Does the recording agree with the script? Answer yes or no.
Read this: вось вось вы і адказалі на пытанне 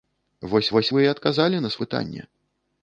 yes